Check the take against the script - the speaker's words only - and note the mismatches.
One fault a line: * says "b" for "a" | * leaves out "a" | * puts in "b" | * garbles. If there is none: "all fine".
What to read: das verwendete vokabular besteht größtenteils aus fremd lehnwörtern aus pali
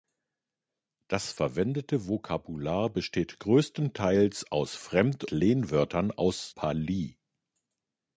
all fine